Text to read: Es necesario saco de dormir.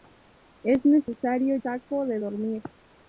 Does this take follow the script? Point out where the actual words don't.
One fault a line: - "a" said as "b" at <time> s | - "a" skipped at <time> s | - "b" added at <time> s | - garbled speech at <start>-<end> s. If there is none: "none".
none